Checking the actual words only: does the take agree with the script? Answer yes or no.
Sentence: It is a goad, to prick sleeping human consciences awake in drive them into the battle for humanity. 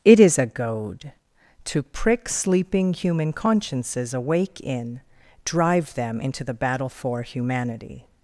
yes